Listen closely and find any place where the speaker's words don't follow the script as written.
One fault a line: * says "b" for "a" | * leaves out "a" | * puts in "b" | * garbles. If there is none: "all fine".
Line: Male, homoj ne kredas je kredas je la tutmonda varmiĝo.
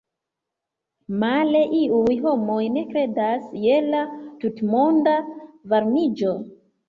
* puts in "iuj"
* leaves out "kredas je"